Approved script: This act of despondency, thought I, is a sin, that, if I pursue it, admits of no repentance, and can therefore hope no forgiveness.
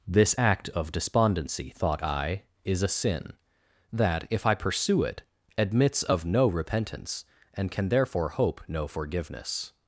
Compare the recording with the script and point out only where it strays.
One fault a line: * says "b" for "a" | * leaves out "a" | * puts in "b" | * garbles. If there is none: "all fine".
all fine